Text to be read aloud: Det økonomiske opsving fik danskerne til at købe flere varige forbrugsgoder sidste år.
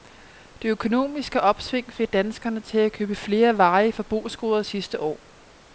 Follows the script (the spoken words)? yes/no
yes